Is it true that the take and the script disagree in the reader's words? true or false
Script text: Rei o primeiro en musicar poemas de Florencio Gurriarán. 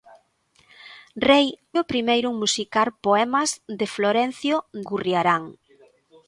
false